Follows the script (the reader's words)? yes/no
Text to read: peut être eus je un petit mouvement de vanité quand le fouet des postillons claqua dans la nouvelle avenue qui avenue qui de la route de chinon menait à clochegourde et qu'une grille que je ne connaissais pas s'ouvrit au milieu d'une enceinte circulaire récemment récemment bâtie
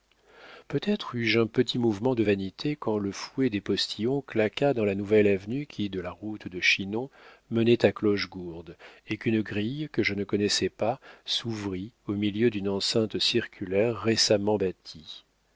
no